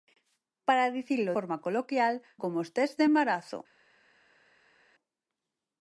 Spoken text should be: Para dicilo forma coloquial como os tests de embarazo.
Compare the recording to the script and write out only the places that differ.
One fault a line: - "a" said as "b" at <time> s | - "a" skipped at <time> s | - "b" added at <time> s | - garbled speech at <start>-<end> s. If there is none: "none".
none